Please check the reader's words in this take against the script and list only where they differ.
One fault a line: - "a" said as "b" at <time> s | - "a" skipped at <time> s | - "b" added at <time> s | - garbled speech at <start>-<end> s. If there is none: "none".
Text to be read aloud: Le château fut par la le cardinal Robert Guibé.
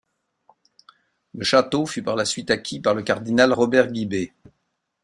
- "suite acquis par" added at 2.2 s